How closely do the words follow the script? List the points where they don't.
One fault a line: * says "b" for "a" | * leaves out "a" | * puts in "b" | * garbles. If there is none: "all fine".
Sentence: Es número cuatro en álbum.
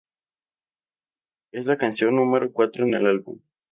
* puts in "la canción"
* puts in "el"